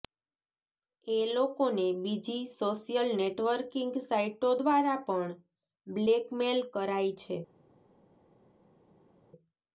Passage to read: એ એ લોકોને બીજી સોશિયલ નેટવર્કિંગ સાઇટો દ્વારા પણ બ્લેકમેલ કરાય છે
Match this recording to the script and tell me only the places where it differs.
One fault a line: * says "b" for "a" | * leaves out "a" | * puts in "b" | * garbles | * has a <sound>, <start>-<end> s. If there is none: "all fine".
* leaves out "એ"